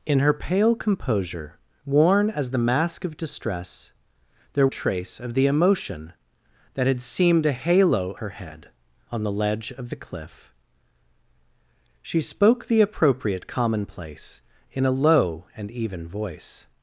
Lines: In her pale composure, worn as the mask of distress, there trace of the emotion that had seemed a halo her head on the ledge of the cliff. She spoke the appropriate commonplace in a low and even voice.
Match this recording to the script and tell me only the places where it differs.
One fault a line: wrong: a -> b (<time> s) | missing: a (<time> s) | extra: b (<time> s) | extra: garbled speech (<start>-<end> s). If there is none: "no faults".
no faults